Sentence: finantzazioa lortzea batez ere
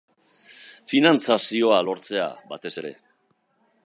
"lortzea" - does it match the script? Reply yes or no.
yes